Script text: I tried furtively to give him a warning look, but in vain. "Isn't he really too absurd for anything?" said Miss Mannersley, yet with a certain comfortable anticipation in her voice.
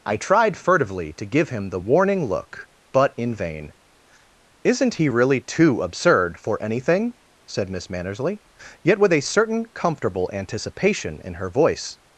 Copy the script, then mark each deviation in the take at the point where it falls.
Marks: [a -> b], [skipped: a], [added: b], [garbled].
I tried furtively to give him [a -> the] warning look, but in vain. "Isn't he really too absurd for anything?" said Miss Mannersley, yet with a certain comfortable anticipation in her voice.